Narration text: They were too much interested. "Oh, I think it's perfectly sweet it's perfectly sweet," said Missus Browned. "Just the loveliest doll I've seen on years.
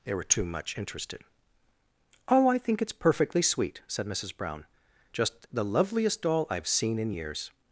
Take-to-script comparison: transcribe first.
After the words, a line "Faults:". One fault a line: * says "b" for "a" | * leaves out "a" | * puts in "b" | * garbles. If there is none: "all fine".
They were too much interested. "Oh, I think it's perfectly sweet," said Missus Brown. "Just the loveliest doll I've seen in years.
Faults:
* leaves out "it's perfectly sweet"
* says "Brown" for "Browned"
* says "in" for "on"